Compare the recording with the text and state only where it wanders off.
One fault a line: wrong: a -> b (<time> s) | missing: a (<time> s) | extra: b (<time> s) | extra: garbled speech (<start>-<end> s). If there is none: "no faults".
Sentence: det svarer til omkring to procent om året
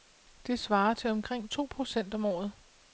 no faults